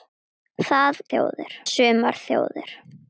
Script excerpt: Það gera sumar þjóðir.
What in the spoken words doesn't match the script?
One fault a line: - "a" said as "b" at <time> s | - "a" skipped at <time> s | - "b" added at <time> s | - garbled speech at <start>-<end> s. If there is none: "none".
- "gera" said as "þjóðir" at 1.1 s